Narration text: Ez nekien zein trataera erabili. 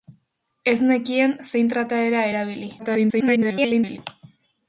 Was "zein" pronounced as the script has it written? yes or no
yes